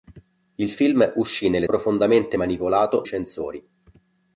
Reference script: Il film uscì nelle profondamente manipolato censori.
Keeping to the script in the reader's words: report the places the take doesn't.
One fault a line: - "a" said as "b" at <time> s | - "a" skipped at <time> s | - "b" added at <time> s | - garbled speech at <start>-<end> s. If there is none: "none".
none